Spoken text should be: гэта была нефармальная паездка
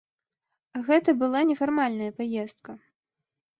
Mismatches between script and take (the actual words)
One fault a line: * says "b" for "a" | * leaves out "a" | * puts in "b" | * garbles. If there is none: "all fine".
all fine